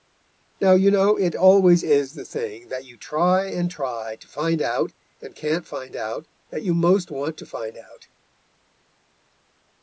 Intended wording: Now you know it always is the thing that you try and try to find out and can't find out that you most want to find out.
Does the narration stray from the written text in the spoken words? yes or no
no